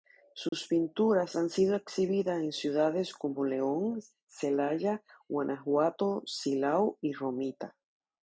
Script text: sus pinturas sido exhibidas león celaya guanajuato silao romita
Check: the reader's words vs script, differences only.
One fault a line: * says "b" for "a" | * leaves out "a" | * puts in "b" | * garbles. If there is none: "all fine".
* puts in "han"
* puts in "en ciudades como"
* puts in "y"